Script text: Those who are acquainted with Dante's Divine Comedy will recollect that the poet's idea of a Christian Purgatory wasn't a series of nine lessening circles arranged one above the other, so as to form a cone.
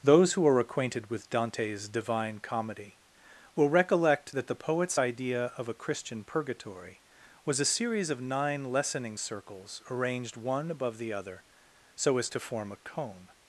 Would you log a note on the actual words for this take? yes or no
yes